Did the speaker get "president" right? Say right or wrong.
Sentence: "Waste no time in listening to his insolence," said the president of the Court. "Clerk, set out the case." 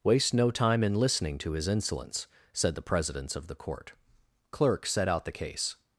wrong